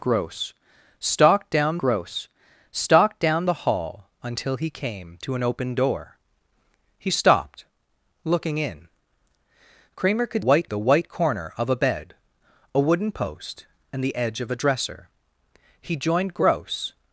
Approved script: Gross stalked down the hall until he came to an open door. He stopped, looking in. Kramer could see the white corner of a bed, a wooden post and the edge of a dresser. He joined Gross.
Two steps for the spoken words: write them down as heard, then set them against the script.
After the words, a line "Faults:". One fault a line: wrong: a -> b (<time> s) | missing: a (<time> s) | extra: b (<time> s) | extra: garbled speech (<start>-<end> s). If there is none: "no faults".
Gross stalked down gross stalked down the hall until he came to an open door. He stopped, looking in. Kramer could white the white corner of a bed, a wooden post and the edge of a dresser. He joined Gross.
Faults:
extra: gross stalked down (1.8 s)
wrong: see -> white (10.4 s)